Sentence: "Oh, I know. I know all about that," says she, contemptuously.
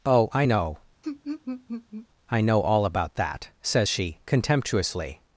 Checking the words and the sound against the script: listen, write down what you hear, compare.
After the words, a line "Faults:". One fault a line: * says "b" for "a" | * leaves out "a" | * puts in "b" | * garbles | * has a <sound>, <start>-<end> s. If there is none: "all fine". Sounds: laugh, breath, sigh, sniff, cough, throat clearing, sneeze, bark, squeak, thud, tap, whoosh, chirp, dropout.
"Oh, I know. I know all about that," says she, contemptuously.
Faults:
* has a laugh, 1.0-2.1 s